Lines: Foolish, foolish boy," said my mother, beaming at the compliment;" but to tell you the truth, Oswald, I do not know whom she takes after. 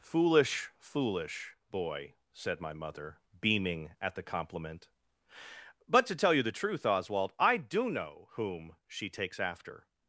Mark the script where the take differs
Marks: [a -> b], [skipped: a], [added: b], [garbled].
Foolish, foolish boy," said my mother, beaming at the compliment;" but to tell you the truth, Oswald, I do [skipped: not] know whom she takes after.